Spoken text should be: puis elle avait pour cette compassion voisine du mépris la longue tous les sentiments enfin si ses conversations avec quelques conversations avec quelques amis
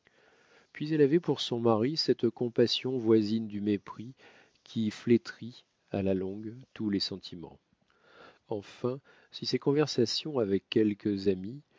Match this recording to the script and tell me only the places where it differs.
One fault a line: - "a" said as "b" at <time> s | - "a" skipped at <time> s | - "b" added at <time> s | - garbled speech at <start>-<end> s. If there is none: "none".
- "son mari" added at 1.4 s
- "qui flétrit à" added at 4.6 s
- "conversations avec quelques" skipped at 11.3 s